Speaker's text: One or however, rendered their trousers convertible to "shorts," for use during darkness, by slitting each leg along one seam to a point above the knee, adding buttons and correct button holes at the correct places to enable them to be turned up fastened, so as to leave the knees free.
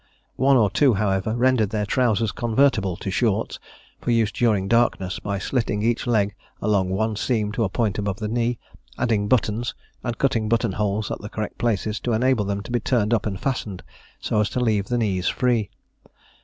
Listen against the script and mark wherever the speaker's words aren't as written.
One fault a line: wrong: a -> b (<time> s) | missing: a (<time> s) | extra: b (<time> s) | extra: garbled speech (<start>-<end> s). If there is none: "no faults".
extra: two (0.7 s)
wrong: correct -> cutting (10.2 s)
extra: and (13.3 s)